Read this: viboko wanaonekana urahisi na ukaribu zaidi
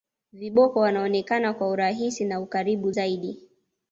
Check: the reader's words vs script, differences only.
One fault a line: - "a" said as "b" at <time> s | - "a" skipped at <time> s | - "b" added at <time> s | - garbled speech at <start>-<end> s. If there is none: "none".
- "kwa" added at 1.5 s